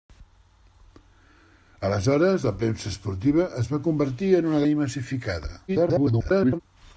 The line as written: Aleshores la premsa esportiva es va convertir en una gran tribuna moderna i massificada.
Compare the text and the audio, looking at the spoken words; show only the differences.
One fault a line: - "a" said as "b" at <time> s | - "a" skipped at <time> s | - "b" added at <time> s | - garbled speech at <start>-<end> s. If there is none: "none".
- "gran tribuna moderna" skipped at 4.6 s
- garbled speech at 5.7-6.6 s